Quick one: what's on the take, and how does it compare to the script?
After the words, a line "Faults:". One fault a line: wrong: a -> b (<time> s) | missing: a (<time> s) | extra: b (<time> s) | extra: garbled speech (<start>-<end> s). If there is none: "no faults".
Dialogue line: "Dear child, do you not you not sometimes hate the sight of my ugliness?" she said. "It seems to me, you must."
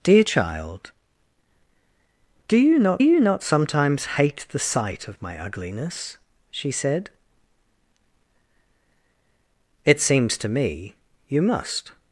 "Dear child, do you not you not sometimes hate the sight of my ugliness?" she said. "It seems to me, you must."
Faults:
no faults